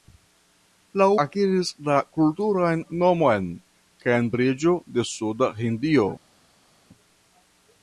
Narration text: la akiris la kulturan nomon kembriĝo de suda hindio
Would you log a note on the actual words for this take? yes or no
no